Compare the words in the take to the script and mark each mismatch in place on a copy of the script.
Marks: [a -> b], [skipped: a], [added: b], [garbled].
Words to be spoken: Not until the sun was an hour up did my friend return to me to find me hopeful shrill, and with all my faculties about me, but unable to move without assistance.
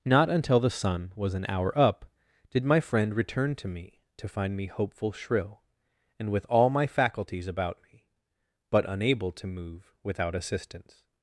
Not until the sun was an hour up did my friend return to me to find me hopeful shrill, and with all my faculties about me, but unable to move without assistance.